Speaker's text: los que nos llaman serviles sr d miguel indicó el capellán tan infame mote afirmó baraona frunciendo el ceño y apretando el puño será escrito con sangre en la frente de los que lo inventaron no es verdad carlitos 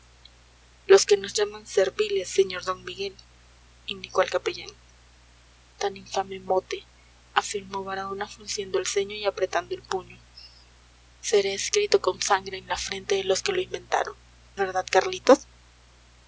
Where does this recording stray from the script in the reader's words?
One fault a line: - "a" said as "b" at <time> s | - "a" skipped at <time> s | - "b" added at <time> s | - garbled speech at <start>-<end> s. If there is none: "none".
- "no es" skipped at 14.2 s